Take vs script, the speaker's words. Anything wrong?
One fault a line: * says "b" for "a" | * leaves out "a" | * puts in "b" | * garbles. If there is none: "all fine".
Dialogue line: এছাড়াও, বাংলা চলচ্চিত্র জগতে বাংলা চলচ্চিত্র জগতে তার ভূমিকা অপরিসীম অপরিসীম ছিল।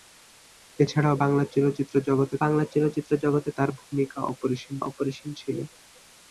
all fine